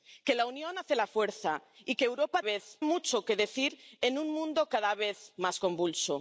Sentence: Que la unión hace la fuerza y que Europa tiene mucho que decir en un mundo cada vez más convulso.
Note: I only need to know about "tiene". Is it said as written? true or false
false